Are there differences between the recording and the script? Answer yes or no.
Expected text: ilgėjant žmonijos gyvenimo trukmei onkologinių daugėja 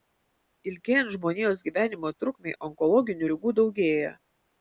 yes